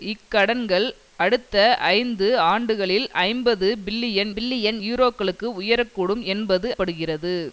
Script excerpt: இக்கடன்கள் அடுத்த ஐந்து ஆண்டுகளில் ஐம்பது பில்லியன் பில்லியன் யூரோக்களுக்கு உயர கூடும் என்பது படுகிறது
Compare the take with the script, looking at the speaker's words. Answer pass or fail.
pass